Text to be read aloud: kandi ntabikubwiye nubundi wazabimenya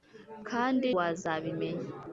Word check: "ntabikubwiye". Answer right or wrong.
wrong